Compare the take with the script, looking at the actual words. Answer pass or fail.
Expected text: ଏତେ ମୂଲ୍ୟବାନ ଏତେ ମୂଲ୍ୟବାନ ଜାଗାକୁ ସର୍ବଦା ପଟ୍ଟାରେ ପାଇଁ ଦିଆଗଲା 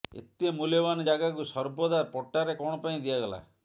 fail